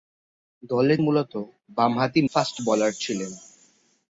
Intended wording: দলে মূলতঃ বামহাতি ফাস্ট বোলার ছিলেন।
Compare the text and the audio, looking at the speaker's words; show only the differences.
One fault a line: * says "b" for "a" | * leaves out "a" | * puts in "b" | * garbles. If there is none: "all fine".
all fine